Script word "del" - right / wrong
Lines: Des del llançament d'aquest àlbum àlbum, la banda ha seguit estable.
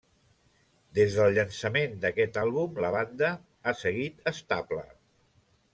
right